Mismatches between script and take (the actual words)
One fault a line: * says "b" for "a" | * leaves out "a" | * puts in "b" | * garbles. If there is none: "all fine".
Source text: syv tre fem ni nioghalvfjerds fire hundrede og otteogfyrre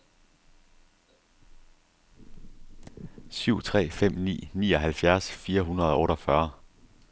all fine